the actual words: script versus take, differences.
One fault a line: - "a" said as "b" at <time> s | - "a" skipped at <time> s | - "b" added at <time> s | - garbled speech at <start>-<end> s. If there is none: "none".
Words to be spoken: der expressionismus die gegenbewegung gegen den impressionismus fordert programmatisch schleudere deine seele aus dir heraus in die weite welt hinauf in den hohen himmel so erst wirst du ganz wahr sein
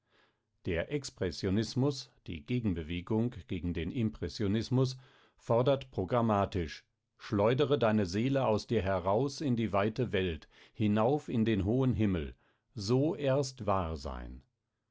- "wirst du ganz" skipped at 13.7 s